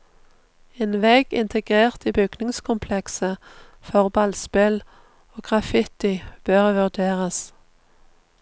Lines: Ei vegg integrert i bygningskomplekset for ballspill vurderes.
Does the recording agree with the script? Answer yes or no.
no